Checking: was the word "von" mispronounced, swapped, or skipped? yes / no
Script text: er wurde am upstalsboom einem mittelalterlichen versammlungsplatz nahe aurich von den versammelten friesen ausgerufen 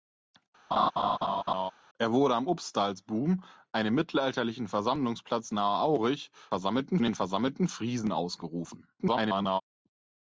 yes